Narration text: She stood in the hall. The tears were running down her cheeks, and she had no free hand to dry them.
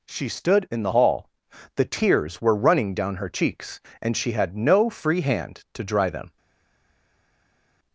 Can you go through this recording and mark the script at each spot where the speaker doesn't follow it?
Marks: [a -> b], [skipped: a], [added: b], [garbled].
She stood in the hall. The tears were running down her cheeks, and she had no free hand to dry them.